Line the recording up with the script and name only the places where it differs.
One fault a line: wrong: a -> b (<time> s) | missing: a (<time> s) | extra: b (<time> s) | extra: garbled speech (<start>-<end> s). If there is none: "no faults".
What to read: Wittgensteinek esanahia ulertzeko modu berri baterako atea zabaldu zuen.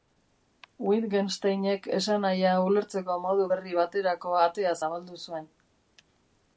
no faults